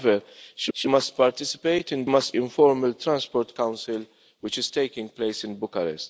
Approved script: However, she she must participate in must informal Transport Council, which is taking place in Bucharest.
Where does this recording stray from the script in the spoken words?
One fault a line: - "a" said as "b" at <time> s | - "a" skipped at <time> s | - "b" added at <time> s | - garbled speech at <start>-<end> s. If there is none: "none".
none